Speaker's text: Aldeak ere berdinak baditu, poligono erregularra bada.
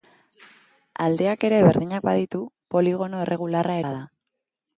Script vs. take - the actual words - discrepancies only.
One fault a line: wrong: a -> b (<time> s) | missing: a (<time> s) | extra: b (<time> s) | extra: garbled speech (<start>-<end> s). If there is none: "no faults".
no faults